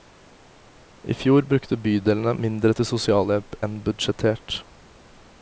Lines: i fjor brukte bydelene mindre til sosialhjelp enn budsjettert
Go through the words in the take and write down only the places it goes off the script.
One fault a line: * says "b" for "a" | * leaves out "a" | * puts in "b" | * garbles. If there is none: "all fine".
all fine